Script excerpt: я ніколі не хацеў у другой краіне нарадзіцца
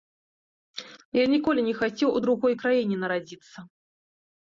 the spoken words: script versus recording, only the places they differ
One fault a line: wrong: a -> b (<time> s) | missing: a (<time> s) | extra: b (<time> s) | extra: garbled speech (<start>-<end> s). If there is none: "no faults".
no faults